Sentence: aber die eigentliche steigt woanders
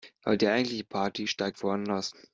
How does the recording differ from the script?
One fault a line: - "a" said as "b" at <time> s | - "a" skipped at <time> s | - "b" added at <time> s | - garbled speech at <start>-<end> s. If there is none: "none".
- "party" added at 0.8 s